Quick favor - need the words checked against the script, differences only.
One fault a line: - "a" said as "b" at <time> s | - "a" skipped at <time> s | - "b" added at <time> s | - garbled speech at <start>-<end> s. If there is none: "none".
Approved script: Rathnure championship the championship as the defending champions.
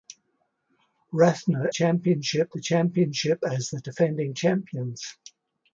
none